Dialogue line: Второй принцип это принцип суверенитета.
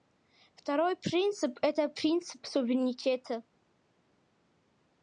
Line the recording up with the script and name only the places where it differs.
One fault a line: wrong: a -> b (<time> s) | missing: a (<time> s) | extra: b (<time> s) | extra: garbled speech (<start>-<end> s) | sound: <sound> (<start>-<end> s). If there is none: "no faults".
no faults